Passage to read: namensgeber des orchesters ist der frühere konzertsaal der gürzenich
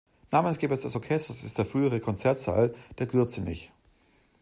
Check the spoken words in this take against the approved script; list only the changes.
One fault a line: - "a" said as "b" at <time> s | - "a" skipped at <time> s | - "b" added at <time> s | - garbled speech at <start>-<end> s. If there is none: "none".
none